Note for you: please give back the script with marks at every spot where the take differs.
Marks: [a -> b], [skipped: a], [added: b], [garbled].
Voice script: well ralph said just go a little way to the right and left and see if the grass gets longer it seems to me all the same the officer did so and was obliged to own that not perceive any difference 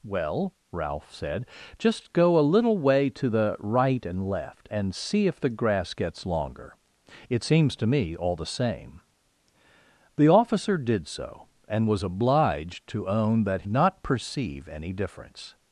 well ralph said just go a little way to the right and left and see if the grass gets longer it seems to me all the same the officer did so and was obliged to own that not perceive any difference